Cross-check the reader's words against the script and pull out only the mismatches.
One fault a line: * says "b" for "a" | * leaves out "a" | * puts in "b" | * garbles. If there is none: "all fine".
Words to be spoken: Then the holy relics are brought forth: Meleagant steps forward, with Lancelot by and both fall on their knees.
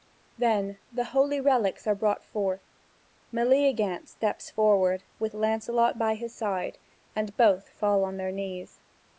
* puts in "his side"